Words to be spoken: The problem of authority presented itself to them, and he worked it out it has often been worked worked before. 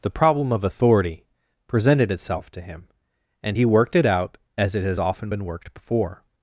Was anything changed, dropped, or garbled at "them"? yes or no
yes